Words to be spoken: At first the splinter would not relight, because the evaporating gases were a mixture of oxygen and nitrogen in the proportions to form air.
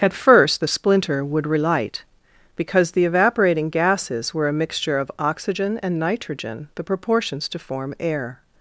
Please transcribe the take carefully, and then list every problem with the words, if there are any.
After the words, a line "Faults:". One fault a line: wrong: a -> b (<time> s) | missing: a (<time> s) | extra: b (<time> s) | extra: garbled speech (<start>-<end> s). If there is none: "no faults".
At first the splinter would relight, because the evaporating gases were a mixture of oxygen and nitrogen the proportions to form air.
Faults:
missing: not (1.5 s)
missing: in (6.7 s)